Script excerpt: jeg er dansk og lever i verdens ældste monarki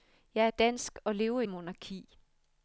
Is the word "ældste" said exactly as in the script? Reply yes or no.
no